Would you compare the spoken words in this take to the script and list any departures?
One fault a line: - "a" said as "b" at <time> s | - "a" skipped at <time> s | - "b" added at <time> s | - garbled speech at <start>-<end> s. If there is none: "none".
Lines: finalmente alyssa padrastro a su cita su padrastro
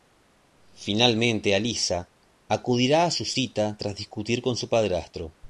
- "padrastro" said as "acudirá" at 2.5 s
- "tras discutir con" added at 3.8 s